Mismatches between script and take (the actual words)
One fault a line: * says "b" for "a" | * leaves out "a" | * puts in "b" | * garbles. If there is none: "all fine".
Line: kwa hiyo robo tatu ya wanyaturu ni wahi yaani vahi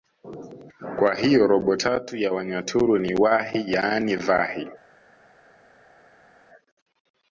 all fine